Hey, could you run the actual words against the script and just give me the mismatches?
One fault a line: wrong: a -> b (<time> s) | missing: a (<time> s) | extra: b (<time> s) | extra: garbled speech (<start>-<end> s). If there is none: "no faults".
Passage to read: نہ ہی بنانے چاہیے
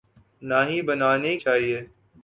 no faults